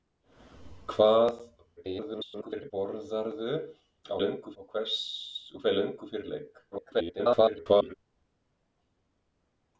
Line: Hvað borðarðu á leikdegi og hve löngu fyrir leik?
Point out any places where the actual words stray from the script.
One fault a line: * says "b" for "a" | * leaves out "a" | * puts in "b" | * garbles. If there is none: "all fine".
* garbles
* says "löngu" for "leikdegi"
* garbles